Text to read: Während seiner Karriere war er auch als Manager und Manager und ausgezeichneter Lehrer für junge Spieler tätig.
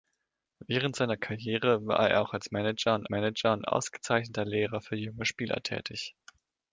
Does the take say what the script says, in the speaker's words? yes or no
yes